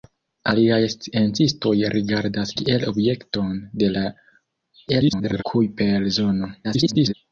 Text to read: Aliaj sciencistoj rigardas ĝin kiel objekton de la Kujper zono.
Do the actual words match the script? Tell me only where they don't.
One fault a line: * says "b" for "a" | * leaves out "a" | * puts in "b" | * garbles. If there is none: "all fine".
* leaves out "ĝin"
* garbles
* garbles